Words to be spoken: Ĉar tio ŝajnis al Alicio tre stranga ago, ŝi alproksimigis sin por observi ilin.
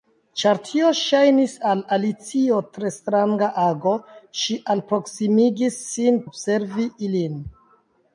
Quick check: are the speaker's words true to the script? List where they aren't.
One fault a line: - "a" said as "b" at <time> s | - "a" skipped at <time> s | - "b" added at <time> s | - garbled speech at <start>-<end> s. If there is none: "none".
- "por" skipped at 6.2 s